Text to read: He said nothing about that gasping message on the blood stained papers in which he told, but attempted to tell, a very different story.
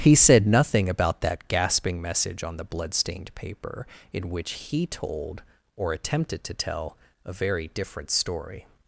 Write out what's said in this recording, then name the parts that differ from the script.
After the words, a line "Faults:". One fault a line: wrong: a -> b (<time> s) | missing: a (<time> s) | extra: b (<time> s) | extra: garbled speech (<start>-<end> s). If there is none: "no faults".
He said nothing about that gasping message on the blood stained paper in which he told, or attempted to tell, a very different story.
Faults:
wrong: papers -> paper (3.4 s)
wrong: but -> or (5.8 s)